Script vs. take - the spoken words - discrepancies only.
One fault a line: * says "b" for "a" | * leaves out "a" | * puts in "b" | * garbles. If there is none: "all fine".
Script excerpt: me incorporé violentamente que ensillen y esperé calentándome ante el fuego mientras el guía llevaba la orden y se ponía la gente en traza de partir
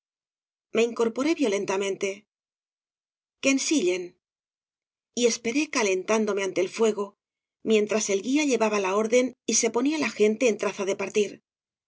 all fine